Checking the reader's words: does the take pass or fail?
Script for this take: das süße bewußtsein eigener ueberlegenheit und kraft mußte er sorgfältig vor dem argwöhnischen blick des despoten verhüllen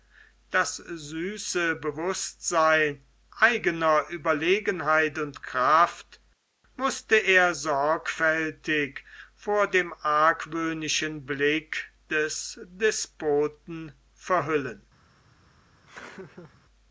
pass